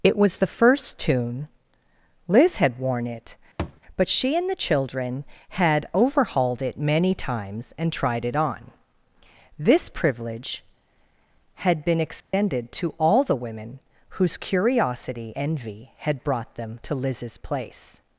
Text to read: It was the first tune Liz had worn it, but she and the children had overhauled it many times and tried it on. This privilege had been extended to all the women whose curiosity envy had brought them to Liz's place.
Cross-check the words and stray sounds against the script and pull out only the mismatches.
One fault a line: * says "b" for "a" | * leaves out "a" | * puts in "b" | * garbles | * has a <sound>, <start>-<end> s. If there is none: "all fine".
* has a thud, 3.6-3.8 s
* has a dropout, 12.2-12.3 s